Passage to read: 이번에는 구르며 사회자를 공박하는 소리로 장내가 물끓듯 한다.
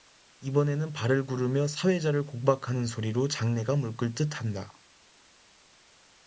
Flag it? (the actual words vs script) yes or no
yes